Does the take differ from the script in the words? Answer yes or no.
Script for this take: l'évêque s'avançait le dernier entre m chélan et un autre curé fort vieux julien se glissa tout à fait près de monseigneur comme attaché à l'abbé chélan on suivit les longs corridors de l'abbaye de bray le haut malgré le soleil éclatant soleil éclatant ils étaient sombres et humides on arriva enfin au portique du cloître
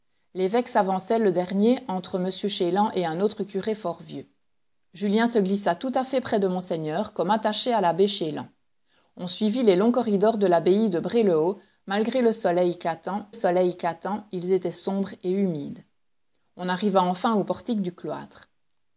no